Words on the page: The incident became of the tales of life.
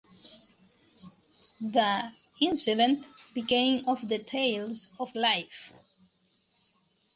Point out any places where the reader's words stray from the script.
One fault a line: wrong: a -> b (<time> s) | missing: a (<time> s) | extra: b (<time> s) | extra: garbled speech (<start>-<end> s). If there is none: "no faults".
no faults